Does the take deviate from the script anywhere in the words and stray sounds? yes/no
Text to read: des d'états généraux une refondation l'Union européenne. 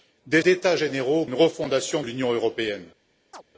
yes